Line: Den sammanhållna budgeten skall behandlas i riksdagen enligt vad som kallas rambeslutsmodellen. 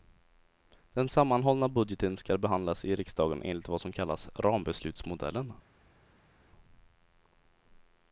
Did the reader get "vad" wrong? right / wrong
right